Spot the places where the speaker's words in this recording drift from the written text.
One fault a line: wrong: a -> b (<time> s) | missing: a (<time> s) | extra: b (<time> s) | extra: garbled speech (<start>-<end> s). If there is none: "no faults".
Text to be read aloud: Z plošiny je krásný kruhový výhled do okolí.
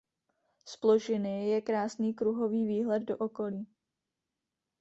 no faults